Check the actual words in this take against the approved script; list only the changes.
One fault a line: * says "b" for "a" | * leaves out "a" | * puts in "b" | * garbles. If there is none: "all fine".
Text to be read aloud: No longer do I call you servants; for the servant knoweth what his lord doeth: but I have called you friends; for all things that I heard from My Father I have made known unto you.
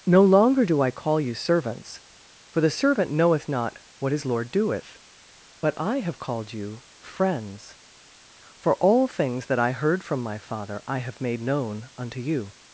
* puts in "not"